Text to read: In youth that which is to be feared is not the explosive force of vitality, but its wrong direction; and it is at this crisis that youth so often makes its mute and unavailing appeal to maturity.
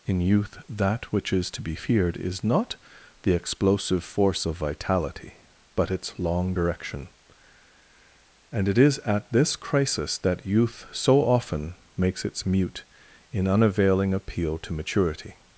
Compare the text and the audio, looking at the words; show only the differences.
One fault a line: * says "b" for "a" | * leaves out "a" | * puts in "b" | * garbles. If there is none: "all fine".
* says "long" for "wrong"
* says "in" for "and"